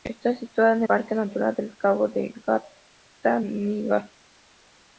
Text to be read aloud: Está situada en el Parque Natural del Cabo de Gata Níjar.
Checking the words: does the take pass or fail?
fail